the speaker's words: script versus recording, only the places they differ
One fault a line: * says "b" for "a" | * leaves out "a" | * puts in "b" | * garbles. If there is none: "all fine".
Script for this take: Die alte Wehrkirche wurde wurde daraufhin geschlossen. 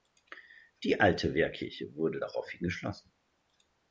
* leaves out "wurde"